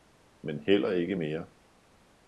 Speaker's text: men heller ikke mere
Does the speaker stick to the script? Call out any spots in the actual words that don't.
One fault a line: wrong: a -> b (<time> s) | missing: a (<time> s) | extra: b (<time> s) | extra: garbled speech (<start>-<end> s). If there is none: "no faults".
no faults